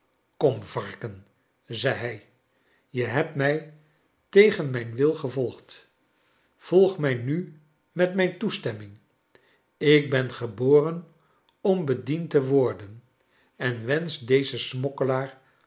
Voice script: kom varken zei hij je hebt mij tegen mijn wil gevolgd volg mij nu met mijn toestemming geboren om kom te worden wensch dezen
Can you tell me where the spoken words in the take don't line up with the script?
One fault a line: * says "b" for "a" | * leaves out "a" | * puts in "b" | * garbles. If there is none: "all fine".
* puts in "ik ben"
* says "bediend" for "kom"
* puts in "en"